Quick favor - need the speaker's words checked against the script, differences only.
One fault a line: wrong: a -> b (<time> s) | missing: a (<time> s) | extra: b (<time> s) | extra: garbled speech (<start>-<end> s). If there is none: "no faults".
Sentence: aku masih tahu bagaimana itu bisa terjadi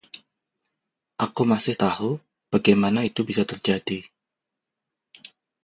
no faults